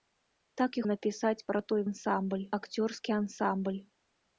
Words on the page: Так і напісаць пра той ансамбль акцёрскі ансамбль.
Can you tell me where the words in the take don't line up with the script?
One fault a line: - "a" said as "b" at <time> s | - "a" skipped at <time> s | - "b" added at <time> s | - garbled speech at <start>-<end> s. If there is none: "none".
none